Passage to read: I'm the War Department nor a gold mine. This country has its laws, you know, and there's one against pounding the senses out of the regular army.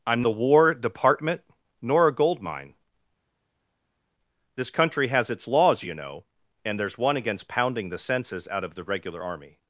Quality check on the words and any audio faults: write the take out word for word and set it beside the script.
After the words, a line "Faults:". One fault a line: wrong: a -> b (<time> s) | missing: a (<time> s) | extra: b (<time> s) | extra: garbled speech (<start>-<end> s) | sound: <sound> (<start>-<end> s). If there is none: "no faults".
I'm the War Department nor a gold mine. This country has its laws, you know, and there's one against pounding the senses out of the regular army.
Faults:
no faults